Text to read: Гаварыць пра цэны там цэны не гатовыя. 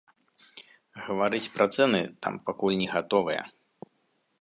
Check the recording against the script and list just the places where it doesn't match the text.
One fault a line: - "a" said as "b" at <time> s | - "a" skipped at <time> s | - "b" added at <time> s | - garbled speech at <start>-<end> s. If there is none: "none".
- "цэны" said as "пакуль" at 2.5 s